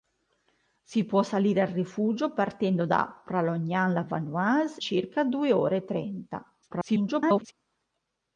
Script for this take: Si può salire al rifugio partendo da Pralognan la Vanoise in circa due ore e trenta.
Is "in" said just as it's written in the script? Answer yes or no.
no